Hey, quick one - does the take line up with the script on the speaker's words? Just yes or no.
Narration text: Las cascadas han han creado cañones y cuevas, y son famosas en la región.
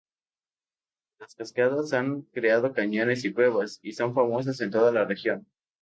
no